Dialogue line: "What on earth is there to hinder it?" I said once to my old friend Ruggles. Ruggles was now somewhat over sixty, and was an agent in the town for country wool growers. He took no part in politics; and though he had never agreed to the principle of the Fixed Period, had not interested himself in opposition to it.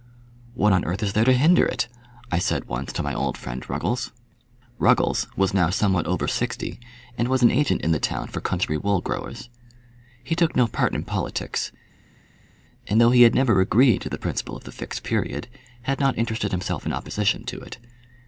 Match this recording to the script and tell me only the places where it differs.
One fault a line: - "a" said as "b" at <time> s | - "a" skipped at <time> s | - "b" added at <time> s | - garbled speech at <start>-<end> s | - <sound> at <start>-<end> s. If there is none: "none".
none